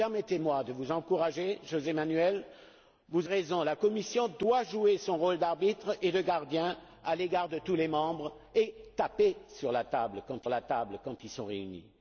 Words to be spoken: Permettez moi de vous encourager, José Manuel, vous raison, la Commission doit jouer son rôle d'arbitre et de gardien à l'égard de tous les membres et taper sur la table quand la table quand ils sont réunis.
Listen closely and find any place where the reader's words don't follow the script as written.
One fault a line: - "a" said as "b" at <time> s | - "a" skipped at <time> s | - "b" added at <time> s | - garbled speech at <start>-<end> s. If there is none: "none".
none